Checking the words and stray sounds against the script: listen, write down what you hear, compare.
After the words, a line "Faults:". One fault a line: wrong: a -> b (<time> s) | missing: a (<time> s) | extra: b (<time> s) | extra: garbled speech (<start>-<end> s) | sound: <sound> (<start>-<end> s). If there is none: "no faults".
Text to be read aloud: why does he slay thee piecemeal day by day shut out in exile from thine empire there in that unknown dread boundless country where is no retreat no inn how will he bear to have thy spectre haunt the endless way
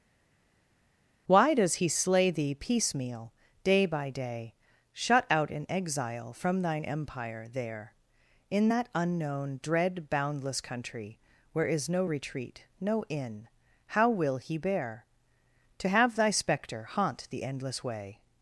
why does he slay thee piecemeal day by day shut out in exile from thine empire there in that unknown dread boundless country where is no retreat no inn how will he bear to have thy spectre haunt the endless way
Faults:
no faults